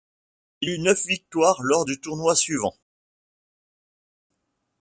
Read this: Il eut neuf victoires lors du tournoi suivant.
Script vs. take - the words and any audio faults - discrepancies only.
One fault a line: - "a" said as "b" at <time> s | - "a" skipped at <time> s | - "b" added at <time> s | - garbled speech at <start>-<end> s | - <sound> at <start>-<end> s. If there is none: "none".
none